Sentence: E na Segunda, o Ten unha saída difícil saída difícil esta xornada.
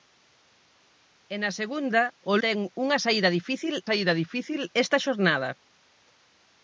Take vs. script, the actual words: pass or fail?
pass